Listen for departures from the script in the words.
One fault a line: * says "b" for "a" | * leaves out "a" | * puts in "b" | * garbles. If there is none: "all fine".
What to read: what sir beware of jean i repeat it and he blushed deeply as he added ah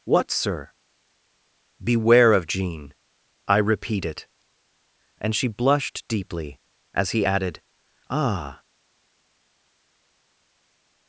* says "she" for "he"